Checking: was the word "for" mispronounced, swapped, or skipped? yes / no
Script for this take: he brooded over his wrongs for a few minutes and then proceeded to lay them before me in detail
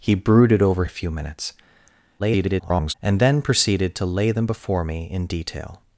yes